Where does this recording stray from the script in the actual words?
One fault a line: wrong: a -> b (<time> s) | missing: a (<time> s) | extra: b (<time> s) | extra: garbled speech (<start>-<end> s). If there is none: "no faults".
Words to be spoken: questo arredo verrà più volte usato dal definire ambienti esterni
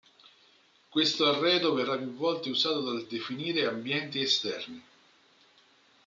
no faults